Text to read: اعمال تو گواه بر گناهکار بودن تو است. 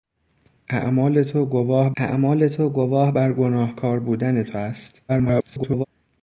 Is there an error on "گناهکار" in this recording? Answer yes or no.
no